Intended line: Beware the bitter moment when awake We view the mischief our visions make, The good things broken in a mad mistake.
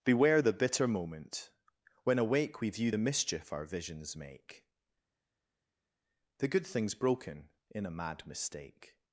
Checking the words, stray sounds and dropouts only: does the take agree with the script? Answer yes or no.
yes